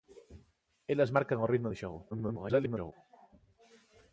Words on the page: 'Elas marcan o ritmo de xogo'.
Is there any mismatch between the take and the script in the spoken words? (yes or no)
yes